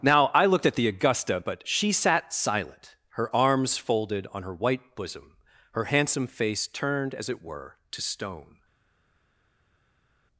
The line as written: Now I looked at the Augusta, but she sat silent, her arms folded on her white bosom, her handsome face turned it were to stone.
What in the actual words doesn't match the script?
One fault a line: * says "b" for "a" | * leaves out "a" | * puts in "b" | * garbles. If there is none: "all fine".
* puts in "as"